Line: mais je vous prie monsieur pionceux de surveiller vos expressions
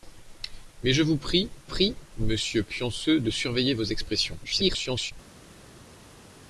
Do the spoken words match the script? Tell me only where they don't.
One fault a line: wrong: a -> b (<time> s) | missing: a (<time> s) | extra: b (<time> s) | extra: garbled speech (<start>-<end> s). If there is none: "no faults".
extra: prie (1.6 s)
extra: garbled speech (4.4-5.1 s)